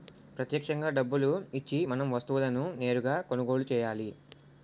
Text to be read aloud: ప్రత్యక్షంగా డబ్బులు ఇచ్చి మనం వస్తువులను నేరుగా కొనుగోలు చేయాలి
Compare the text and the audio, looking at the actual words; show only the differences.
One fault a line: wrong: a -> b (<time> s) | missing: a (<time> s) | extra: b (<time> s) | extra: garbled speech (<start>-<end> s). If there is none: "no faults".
no faults